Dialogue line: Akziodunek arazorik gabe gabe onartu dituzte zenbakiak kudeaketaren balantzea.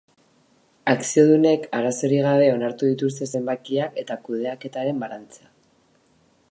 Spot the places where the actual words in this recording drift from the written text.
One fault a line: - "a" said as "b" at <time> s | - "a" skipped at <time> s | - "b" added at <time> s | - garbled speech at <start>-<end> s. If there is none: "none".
- "gabe" skipped at 2.5 s
- "eta" added at 4.0 s